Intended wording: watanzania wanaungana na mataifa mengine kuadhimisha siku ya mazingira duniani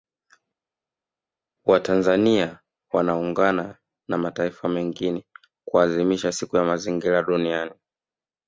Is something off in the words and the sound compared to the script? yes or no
no